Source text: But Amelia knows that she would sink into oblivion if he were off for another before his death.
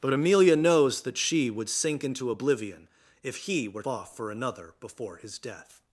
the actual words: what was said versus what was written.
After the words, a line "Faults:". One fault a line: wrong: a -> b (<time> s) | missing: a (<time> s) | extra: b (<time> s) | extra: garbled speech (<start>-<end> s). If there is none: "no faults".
But Amelia knows that she would sink into oblivion if he were off for another before his death.
Faults:
no faults